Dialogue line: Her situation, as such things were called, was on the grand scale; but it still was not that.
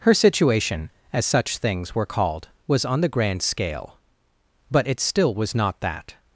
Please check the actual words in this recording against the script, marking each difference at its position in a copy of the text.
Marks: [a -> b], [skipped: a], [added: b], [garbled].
Her situation, as such things were called, was on the grand scale; but it still was not that.